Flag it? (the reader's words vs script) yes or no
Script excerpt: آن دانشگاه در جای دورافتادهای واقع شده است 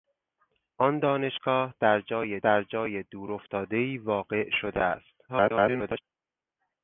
yes